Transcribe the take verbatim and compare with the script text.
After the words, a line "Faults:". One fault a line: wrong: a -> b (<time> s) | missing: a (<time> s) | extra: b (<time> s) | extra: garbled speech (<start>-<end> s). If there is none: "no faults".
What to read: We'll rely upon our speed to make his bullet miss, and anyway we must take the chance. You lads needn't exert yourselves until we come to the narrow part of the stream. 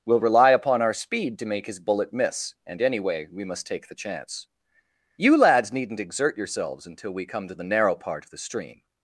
We'll rely upon our speed to make his bullet miss, and anyway we must take the chance. You lads needn't exert yourselves until we come to the narrow part of the stream.
Faults:
no faults